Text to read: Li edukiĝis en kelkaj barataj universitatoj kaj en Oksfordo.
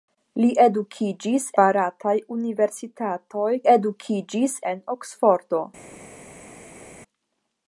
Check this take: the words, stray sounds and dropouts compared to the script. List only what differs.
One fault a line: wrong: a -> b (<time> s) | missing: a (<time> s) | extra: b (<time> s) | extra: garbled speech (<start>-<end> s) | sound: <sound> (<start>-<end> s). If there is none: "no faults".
missing: en kelkaj (1.4 s)
wrong: kaj -> edukiĝis (3.7 s)